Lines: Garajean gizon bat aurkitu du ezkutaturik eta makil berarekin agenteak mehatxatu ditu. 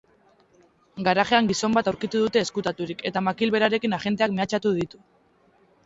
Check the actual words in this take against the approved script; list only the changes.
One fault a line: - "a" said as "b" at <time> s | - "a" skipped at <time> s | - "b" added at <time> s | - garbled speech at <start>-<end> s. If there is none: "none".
- "du" said as "dute" at 2.2 s